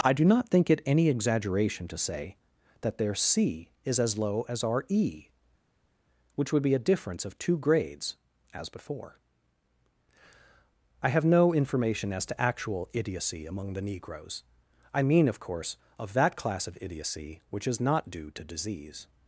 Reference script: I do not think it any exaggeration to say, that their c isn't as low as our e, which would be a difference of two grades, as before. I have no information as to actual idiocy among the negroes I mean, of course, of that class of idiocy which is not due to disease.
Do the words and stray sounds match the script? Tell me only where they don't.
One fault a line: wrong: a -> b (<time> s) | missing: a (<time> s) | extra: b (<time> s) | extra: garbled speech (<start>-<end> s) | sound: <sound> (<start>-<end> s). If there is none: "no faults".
wrong: isn't -> is (3.8 s)